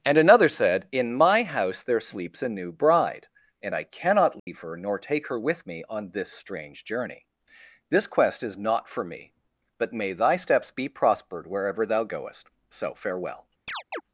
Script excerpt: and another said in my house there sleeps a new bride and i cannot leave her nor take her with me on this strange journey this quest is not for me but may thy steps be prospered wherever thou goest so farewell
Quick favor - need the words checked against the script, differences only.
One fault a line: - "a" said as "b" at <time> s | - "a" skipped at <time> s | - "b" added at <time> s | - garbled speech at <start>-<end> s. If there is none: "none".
none